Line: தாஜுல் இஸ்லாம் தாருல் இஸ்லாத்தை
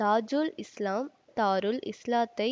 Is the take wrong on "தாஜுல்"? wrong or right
right